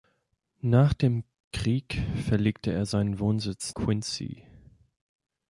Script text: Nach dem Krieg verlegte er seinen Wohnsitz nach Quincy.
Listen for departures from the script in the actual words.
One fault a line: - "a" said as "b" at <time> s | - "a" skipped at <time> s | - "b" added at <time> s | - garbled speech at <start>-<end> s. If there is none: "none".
- "nach" skipped at 3.8 s